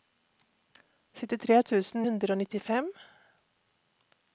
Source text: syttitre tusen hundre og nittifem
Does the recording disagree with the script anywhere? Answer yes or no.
no